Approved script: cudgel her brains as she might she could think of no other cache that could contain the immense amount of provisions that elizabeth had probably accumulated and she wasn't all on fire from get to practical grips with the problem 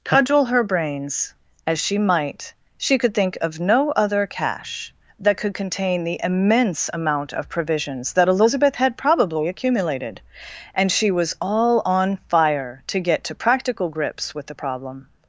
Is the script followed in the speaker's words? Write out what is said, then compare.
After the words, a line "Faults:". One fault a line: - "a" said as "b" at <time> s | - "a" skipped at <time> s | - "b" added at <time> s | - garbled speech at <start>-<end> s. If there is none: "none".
cudgel her brains as she might she could think of no other cache that could contain the immense amount of provisions that elizabeth had probably accumulated and she was all on fire to get to practical grips with the problem
Faults:
- "wasn't" said as "was" at 11.1 s
- "from" said as "to" at 12.9 s